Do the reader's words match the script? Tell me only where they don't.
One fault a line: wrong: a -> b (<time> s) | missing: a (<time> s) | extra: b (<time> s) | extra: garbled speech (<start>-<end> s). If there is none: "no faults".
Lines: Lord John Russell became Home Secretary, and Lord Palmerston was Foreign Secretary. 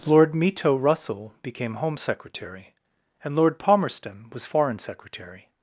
wrong: John -> Mito (0.3 s)